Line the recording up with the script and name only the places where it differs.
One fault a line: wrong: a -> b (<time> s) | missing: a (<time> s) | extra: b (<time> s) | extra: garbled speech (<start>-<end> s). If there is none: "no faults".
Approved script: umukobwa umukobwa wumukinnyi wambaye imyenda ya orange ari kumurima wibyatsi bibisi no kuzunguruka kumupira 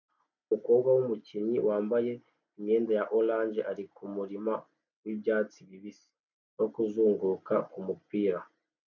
missing: umukobwa (0.9 s)